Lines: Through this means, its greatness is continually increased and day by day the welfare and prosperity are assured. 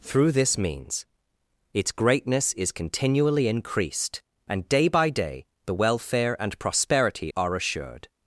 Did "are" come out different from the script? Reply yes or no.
no